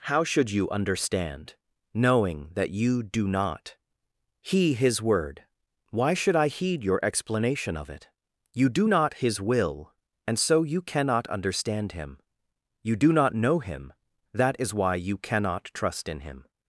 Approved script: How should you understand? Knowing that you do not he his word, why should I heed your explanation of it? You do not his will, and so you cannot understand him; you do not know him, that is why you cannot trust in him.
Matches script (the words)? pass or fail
pass